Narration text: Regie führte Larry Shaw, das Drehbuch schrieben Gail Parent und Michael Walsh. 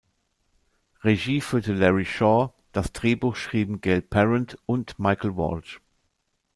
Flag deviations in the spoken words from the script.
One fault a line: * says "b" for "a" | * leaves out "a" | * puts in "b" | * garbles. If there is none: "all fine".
all fine